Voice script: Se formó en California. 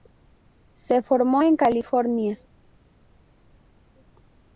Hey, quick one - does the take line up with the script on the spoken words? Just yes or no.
yes